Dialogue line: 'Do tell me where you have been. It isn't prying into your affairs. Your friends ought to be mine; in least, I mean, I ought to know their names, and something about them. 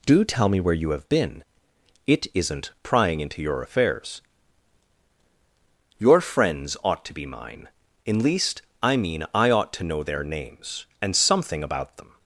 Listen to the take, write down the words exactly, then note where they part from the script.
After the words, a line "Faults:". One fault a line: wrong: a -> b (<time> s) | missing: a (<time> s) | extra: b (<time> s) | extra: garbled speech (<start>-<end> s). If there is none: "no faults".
'Do tell me where you have been. It isn't prying into your affairs. Your friends ought to be mine; in least, I mean, I ought to know their names, and something about them.
Faults:
no faults